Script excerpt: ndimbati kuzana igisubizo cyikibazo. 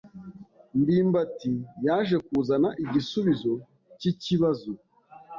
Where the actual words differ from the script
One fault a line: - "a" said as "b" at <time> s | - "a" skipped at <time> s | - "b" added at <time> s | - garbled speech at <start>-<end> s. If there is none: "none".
- "yaje" added at 1.9 s